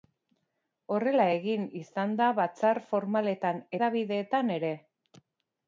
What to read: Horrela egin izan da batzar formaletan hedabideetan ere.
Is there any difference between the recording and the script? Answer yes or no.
no